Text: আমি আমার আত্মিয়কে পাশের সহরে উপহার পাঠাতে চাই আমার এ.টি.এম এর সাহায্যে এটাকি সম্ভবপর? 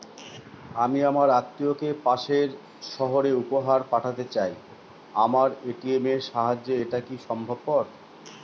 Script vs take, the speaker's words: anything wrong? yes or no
no